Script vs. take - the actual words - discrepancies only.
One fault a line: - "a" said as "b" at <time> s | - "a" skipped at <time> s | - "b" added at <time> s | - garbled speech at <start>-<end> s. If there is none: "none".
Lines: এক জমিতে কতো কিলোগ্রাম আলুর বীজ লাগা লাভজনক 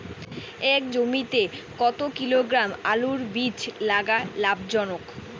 none